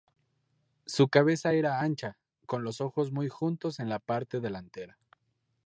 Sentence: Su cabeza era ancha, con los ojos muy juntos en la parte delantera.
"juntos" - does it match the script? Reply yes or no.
yes